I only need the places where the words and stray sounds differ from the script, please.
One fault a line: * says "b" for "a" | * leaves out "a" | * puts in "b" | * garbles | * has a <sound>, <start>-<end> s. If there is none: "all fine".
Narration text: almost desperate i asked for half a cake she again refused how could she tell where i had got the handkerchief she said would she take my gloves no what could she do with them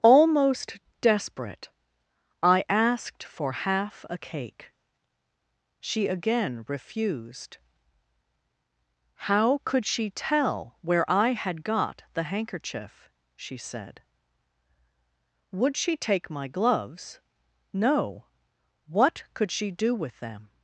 all fine